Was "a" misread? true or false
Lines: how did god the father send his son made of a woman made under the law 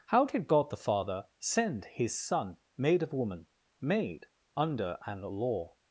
true